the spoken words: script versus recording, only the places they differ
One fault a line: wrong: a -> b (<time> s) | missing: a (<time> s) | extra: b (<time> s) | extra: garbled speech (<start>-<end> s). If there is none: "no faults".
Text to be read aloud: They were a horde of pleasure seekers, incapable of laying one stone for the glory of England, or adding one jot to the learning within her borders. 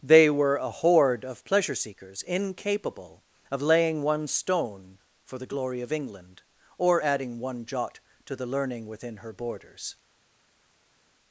no faults